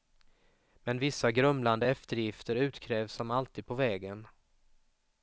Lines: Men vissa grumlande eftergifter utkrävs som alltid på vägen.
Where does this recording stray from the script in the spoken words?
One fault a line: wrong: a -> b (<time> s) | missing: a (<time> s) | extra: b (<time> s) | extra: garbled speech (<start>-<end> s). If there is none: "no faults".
no faults